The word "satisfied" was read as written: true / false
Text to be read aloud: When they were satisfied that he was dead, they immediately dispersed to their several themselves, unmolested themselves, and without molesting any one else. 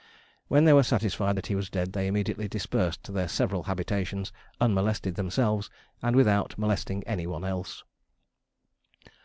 true